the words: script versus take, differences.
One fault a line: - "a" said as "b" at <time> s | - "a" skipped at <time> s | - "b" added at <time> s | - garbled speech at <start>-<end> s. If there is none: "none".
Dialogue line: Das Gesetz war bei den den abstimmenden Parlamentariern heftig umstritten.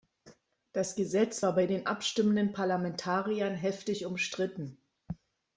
- "den" skipped at 1.9 s